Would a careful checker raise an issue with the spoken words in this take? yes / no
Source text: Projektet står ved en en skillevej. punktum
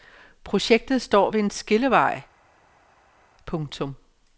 yes